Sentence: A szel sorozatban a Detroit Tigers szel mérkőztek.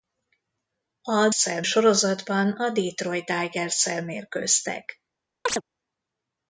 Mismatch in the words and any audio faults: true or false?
true